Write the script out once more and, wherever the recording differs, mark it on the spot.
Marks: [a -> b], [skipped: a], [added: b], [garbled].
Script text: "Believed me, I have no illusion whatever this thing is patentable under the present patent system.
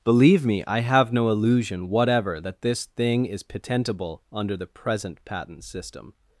["Believed -> Believe] me, I have no illusion whatever [added: that] this thing is patentable under the present patent system.